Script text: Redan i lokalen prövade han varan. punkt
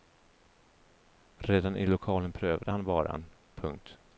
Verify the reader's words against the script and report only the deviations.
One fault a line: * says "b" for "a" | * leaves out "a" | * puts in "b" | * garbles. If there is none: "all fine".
all fine